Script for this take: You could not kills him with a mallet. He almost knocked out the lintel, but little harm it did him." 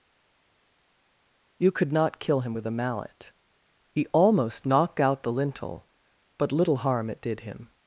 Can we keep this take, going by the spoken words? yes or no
no